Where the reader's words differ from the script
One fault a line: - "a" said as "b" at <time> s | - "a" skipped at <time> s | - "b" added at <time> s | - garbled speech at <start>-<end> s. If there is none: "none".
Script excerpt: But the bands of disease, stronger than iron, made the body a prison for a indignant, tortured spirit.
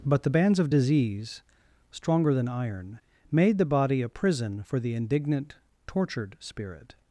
- "a" said as "the" at 4.8 s